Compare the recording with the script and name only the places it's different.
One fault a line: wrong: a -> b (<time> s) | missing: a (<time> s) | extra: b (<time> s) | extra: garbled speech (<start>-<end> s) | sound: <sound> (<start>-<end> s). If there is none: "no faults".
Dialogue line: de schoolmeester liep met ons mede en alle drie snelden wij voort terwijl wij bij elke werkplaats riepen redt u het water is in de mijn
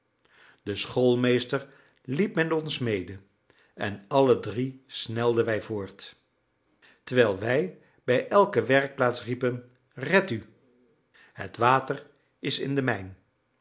no faults